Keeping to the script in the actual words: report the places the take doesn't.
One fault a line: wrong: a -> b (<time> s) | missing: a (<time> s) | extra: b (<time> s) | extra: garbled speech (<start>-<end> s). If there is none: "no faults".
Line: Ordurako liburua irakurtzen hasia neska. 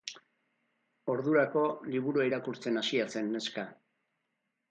extra: zen (3.1 s)